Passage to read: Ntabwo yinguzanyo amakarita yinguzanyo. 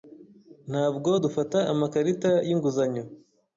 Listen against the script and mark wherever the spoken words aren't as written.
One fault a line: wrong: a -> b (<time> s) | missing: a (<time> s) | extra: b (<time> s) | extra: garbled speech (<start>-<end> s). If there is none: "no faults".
wrong: yinguzanyo -> dufata (1.2 s)